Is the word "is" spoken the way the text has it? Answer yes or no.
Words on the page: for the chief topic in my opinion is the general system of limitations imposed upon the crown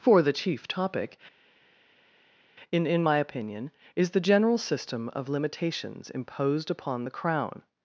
yes